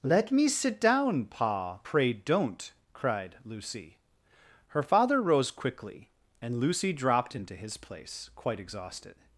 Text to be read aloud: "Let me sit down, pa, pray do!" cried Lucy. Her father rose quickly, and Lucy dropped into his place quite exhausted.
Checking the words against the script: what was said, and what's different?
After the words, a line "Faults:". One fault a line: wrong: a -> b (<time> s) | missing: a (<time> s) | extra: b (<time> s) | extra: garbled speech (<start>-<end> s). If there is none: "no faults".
"Let me sit down, pa, pray don't!" cried Lucy. Her father rose quickly, and Lucy dropped into his place quite exhausted.
Faults:
wrong: do -> don't (2.1 s)